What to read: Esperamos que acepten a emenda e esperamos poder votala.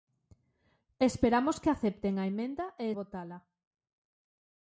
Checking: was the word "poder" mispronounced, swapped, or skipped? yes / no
yes